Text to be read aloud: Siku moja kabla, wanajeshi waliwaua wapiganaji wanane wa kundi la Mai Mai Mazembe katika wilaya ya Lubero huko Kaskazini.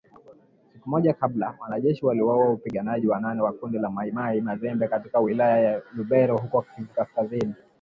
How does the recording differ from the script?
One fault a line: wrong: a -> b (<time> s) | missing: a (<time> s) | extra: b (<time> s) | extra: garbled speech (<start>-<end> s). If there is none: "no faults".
no faults